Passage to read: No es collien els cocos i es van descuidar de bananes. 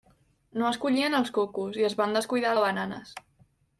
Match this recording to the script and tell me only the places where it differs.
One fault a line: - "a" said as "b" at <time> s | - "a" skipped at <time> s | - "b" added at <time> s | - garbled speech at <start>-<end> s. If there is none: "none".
none